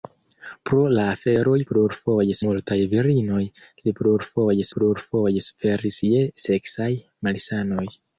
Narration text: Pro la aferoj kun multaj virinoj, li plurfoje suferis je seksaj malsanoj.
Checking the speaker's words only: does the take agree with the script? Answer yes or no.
no